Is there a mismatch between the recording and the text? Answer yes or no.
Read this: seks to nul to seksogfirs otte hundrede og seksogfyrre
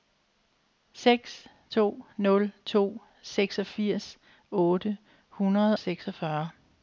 yes